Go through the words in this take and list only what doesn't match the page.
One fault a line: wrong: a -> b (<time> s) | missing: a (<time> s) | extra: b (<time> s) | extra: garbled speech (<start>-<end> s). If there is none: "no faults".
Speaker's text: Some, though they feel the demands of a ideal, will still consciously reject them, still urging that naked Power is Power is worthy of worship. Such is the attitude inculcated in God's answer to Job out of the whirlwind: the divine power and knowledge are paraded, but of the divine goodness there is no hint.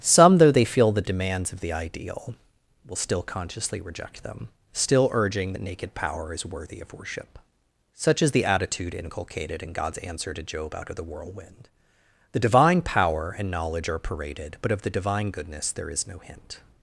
wrong: a -> the (1.6 s)
missing: Power is (6.5 s)